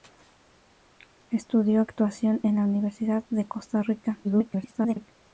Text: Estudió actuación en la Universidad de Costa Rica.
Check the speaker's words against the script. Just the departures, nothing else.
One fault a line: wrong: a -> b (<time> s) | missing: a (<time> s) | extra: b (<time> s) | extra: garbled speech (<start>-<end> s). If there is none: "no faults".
extra: garbled speech (4.2-5.1 s)